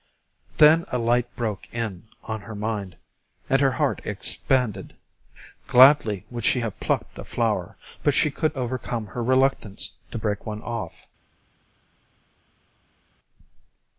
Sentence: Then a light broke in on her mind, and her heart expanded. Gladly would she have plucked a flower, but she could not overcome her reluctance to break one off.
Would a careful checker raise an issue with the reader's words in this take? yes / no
yes